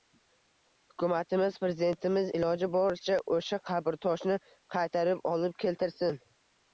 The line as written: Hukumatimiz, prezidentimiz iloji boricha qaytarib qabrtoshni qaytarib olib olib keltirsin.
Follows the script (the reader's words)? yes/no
no